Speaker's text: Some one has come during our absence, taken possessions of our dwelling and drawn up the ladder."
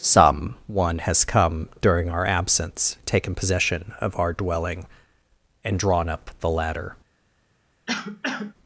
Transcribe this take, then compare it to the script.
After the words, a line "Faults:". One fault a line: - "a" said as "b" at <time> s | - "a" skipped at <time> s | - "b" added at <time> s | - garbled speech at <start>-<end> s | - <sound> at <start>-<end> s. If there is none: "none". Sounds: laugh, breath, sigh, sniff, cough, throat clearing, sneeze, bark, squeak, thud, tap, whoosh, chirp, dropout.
Some one has come during our absence, taken possession of our dwelling and drawn up the ladder."
Faults:
- "possessions" said as "possession" at 3.3 s
- cough at 7.9-8.5 s